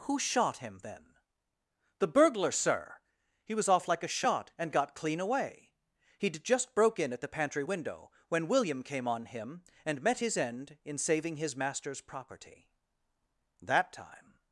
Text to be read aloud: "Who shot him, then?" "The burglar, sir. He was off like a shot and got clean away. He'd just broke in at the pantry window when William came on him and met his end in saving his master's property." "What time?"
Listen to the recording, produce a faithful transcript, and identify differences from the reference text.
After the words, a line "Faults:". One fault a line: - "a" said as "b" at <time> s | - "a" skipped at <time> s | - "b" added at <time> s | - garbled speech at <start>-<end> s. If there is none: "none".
"Who shot him, then?" "The burglar, sir. He was off like a shot and got clean away. He'd just broke in at the pantry window when William came on him and met his end in saving his master's property." "That time?"
Faults:
- "What" said as "That" at 13.6 s